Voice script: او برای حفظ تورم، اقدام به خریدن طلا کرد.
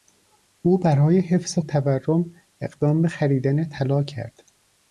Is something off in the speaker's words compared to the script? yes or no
no